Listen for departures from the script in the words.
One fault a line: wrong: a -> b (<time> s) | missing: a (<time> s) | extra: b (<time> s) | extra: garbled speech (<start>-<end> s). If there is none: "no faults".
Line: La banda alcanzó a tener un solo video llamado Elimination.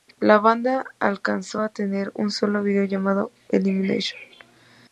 no faults